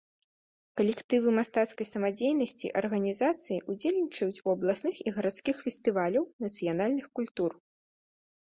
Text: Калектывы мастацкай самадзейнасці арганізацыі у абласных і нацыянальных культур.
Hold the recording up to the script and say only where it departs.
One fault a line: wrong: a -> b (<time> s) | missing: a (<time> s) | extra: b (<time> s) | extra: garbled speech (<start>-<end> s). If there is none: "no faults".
extra: ўдзельнічаюць (3.7 s)
extra: гарадскіх фестываляў (5.2 s)